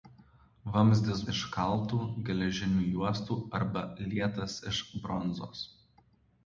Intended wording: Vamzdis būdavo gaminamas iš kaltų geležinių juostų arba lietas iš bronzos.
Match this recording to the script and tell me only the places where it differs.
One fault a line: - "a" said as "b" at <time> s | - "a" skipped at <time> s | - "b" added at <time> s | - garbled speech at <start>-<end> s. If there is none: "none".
- "būdavo gaminamas" skipped at 1.2 s